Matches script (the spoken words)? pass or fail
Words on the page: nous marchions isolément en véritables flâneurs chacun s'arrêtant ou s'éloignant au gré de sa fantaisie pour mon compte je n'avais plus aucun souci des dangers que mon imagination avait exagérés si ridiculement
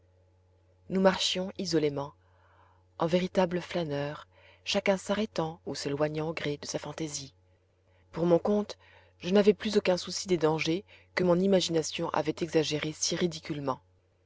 pass